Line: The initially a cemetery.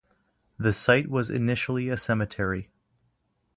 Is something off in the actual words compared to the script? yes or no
yes